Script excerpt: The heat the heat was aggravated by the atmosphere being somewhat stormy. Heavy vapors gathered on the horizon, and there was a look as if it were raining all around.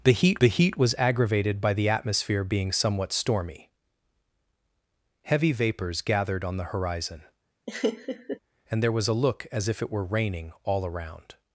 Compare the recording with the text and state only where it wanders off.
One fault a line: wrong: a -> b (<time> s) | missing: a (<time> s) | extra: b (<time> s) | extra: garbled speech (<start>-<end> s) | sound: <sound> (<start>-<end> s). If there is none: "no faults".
sound: laugh (7.7-8.4 s)